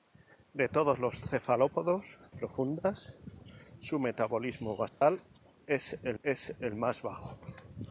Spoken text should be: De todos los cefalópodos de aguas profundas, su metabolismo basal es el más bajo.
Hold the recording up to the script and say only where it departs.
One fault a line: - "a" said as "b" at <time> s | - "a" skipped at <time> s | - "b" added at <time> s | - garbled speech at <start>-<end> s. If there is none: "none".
- "de aguas" skipped at 2.2 s
- "es el" added at 6.2 s